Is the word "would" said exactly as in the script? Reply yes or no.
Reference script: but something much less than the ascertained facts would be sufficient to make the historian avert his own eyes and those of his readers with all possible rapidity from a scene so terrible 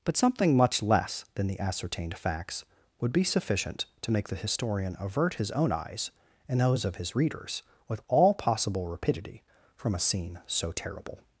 yes